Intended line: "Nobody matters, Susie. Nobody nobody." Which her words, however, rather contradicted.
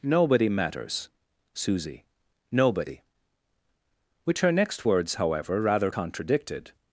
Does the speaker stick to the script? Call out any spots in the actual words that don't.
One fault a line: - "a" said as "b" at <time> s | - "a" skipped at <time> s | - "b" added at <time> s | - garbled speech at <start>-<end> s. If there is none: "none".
- "nobody" skipped at 3.0 s
- "next" added at 4.5 s